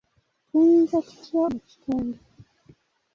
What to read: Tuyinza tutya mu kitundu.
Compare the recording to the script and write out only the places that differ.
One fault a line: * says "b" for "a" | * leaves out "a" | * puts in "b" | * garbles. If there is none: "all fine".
all fine